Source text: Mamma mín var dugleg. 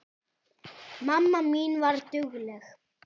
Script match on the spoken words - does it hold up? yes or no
yes